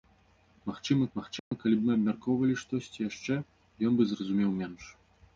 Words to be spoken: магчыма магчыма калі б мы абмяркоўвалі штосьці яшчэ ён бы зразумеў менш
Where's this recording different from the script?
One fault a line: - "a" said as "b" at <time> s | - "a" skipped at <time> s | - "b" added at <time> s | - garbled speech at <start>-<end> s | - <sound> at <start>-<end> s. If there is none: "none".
- dropout at 1.4-1.5 s